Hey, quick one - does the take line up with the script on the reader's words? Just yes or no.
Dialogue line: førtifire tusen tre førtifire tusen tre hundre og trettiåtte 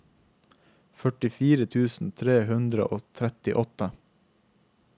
no